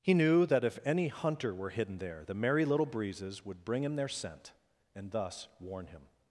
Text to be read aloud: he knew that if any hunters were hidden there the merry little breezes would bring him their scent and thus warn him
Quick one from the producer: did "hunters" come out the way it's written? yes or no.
no